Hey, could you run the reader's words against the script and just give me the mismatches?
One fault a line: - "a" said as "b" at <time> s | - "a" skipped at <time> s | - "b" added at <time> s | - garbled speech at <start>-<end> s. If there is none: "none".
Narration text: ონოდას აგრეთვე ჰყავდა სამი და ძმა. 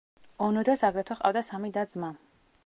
none